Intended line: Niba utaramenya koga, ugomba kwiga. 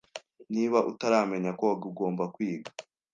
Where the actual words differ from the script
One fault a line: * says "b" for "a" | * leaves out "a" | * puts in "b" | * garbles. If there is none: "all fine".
all fine